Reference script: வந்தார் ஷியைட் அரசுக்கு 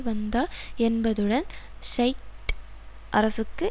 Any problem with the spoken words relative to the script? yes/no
yes